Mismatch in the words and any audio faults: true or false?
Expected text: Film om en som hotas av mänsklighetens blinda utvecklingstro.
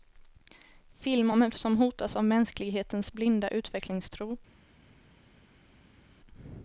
false